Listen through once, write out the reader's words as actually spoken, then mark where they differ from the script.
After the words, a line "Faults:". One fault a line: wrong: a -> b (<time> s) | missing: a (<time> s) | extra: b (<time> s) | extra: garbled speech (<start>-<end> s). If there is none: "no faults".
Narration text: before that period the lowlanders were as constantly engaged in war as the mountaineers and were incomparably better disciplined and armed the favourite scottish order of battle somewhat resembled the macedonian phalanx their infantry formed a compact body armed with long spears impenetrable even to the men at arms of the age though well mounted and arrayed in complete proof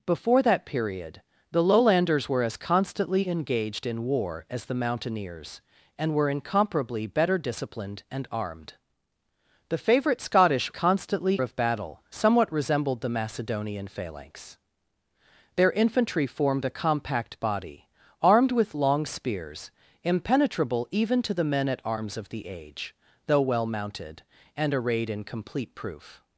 before that period the lowlanders were as constantly engaged in war as the mountaineers and were incomparably better disciplined and armed the favourite scottish constantly of battle somewhat resembled the macedonian phalanx their infantry formed a compact body armed with long spears impenetrable even to the men at arms of the age though well mounted and arrayed in complete proof
Faults:
wrong: order -> constantly (10.7 s)